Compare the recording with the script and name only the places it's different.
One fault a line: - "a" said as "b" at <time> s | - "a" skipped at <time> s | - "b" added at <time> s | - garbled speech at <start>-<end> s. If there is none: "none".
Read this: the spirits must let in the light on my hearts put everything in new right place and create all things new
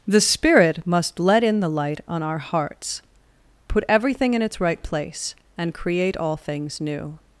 - "spirits" said as "spirit" at 0.2 s
- "my" said as "our" at 2.2 s
- "new" said as "its" at 4.4 s